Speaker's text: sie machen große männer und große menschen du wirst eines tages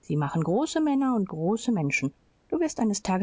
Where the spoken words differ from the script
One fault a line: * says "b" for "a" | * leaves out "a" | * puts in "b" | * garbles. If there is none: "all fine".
all fine